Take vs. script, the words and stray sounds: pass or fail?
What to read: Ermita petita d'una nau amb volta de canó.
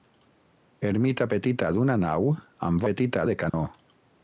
fail